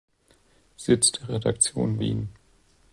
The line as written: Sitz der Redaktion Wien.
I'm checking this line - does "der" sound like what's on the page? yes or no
yes